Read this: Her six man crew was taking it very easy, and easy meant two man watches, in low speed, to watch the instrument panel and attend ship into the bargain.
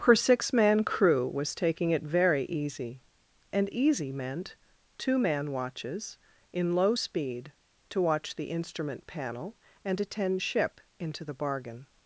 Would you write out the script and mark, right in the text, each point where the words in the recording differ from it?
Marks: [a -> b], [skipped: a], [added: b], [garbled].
Her six man crew was taking it very easy, and easy meant two man watches, in low speed, to watch the instrument panel and attend ship into the bargain.